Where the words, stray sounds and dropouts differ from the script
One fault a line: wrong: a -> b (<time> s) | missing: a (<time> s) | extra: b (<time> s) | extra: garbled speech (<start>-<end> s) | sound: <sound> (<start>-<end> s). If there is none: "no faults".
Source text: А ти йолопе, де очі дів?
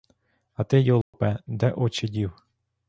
sound: dropout (1.0-1.1 s)